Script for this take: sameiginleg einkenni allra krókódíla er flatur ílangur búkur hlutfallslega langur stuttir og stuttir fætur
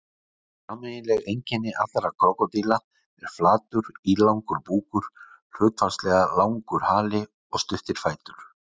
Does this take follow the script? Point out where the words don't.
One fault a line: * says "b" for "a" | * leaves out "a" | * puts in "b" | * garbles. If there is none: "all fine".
* says "hali" for "stuttir"